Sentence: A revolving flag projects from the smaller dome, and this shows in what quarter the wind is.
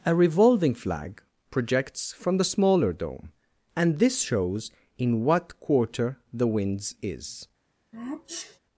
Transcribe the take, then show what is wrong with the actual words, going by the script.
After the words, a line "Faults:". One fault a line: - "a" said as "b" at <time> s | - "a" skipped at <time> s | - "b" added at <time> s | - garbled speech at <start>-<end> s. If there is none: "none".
A revolving flag projects from the smaller dome, and this shows in what quarter the winds is.
Faults:
- "wind" said as "winds" at 6.5 s